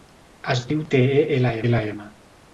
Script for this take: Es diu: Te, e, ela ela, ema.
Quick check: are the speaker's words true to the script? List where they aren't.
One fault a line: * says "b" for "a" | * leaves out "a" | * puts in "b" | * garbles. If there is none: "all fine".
all fine